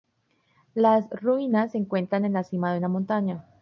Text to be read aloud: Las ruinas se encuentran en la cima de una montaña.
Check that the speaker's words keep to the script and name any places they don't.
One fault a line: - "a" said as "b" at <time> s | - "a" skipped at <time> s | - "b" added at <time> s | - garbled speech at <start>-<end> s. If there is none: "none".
none